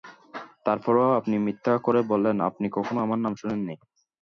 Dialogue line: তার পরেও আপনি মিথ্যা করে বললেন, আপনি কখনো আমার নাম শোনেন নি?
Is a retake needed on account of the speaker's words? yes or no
no